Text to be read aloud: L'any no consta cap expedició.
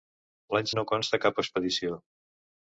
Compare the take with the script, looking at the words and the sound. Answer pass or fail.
pass